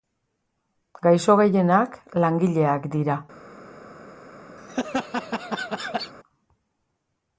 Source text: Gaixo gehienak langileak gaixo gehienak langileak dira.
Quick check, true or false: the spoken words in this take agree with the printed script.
false